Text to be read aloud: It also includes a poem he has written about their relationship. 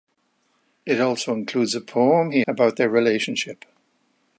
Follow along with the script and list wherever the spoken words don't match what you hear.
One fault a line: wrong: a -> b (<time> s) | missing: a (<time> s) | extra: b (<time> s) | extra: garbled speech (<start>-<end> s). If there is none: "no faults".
missing: has written (2.4 s)